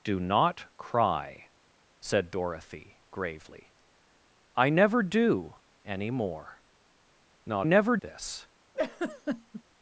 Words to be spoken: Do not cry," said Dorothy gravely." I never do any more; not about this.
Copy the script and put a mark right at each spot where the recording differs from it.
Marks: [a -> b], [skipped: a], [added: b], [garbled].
Do not cry," said Dorothy gravely." I never do any more; not [about -> never] this.